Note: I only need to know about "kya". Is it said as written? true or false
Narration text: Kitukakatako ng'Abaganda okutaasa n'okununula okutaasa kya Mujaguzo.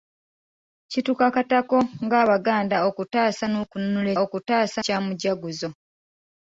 true